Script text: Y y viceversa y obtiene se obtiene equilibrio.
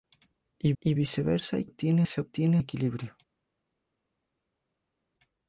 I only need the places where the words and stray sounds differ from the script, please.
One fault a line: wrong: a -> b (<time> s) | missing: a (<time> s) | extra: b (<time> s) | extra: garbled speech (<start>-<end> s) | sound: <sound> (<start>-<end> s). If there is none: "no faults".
no faults